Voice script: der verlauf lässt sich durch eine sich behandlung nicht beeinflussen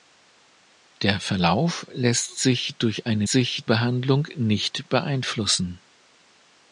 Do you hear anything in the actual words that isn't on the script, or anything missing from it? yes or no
no